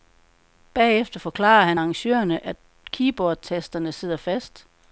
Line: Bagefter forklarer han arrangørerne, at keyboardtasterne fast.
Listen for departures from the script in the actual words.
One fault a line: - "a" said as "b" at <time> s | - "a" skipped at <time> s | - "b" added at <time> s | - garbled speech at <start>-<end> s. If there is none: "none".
- "sidder" added at 3.9 s